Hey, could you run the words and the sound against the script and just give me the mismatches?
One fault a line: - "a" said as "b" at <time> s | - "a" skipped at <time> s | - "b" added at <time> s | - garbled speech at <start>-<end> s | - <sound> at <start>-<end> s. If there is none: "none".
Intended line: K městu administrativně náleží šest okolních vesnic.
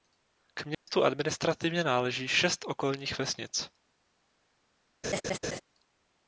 - dropout at 0.7-0.9 s
- laugh at 5.0-5.6 s